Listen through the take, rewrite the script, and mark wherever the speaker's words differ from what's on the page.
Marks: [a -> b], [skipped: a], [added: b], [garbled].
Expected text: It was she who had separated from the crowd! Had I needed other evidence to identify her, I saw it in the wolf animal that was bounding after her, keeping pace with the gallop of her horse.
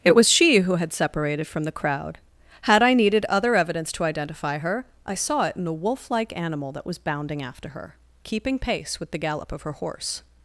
It was she who had separated from the crowd! Had I needed other evidence to identify her, I saw it in the wolf [added: like] animal that was bounding after her, keeping pace with the gallop of her horse.